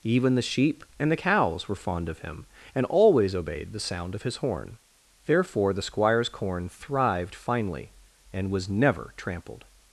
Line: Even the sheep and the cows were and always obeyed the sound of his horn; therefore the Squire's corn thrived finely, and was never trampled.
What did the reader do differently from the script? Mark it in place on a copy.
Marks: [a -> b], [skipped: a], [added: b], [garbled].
Even the sheep and the cows were [added: fond of him] and always obeyed the sound of his horn; therefore the Squire's corn thrived finely, and was never trampled.